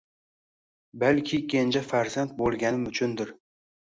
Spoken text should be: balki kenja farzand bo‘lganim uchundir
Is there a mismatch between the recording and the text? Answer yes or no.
no